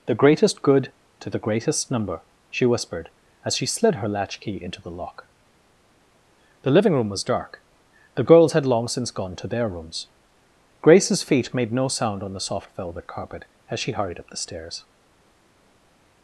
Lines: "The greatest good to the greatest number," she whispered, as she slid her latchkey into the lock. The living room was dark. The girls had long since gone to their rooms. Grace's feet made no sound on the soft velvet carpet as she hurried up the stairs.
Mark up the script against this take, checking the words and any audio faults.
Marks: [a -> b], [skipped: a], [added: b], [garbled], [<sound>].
"The greatest good to the greatest number," she whispered, as she slid her latchkey into the lock. The living room was dark. The girls had long since gone to their rooms. Grace's feet made no sound on the soft velvet carpet as she hurried up the stairs.